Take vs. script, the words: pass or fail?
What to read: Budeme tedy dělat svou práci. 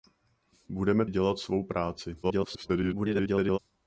fail